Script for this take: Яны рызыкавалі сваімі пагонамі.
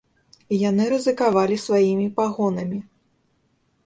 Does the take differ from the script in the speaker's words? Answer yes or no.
no